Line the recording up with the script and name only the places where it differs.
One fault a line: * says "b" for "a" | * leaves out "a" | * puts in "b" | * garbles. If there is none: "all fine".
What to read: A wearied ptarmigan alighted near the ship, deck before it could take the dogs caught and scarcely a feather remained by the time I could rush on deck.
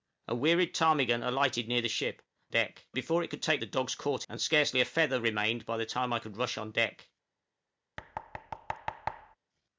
all fine